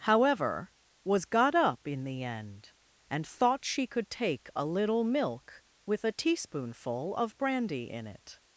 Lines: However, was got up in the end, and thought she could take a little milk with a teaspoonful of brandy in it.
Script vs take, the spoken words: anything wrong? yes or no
no